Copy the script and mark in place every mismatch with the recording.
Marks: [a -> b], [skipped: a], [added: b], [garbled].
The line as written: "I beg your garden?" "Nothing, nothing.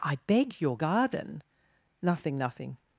"I beg your garden?" "Nothing, nothing.